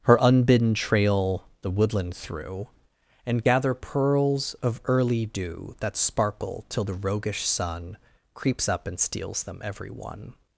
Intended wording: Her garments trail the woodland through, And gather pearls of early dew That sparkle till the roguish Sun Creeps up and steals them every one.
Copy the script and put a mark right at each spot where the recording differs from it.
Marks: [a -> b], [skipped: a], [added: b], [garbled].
Her [garments -> unbidden] trail the woodland through, And gather pearls of early dew That sparkle till the roguish Sun Creeps up and steals them every one.